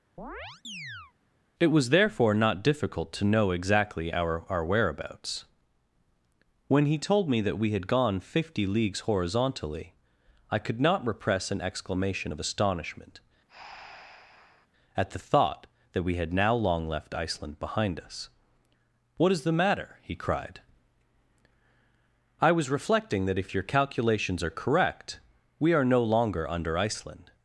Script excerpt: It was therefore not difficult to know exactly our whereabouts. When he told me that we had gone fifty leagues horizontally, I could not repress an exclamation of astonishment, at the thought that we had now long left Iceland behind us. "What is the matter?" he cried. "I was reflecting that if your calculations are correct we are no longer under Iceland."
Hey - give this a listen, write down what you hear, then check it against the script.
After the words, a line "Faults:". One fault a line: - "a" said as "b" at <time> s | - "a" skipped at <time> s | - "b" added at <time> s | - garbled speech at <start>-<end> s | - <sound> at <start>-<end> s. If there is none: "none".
It was therefore not difficult to know exactly our our whereabouts. When he told me that we had gone fifty leagues horizontally, I could not repress an exclamation of astonishment, at the thought that we had now long left Iceland behind us. "What is the matter?" he cried. "I was reflecting that if your calculations are correct we are no longer under Iceland."
Faults:
- chirp at 0.2-1.1 s
- "our" added at 4.5 s
- breath at 13.5-14.7 s